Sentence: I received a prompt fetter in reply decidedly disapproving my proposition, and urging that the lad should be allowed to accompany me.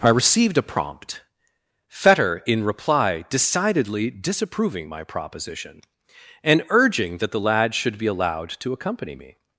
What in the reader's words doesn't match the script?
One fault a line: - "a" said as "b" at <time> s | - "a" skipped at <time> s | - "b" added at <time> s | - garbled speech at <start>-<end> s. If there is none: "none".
none